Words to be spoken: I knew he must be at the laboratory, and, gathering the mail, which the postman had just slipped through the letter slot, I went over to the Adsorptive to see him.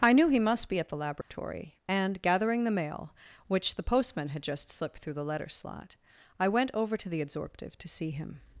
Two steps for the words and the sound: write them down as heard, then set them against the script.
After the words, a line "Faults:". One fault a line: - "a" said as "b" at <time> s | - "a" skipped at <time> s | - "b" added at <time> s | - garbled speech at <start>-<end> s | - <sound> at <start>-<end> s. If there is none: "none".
I knew he must be at the laboratory, and, gathering the mail, which the postman had just slipped through the letter slot, I went over to the Adsorptive to see him.
Faults:
- dropout at 1.2-1.3 s